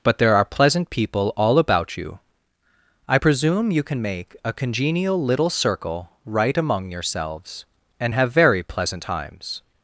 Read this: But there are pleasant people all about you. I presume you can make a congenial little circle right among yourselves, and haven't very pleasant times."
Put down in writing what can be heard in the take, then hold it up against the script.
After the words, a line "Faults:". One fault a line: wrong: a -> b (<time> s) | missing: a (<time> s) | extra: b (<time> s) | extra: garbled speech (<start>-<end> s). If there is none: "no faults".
But there are pleasant people all about you. I presume you can make a congenial little circle right among yourselves, and have very pleasant times."
Faults:
wrong: haven't -> have (8.1 s)